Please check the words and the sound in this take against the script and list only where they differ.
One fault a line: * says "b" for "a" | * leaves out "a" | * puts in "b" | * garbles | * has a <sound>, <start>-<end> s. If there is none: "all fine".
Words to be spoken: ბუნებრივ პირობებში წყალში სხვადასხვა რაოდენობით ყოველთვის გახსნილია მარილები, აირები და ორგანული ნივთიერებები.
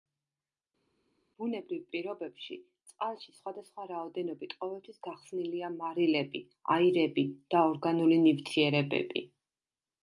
all fine